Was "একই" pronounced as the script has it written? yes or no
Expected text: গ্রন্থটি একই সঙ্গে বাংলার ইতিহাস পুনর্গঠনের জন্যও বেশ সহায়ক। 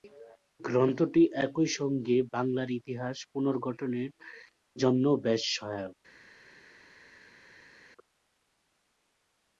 yes